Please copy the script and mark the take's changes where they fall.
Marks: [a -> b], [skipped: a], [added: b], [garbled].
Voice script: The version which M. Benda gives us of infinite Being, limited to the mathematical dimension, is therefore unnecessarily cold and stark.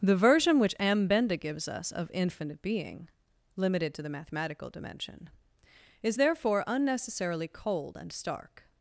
The version which M. Benda gives us of infinite Being, limited to the mathematical dimension, is therefore unnecessarily cold and stark.